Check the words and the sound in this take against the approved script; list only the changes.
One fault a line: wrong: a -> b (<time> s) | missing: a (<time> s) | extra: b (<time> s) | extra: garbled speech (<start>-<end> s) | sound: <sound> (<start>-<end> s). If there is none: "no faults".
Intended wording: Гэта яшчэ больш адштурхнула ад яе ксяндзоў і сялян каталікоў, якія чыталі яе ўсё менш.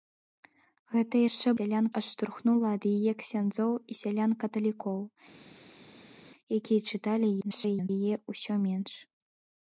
wrong: больш -> сялян (1.6 s)
extra: garbled speech (7.4-7.9 s)